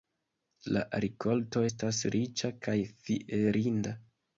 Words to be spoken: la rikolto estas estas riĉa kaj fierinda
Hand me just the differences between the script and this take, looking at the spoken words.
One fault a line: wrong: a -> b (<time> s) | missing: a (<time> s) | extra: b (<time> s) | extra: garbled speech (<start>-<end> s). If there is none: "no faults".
missing: estas (2.0 s)